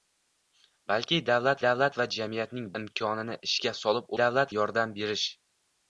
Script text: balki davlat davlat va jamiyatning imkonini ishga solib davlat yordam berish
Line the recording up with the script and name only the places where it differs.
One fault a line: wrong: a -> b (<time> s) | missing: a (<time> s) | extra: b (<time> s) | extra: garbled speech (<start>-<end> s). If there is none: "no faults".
no faults